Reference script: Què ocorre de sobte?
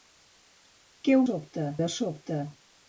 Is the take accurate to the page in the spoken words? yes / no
no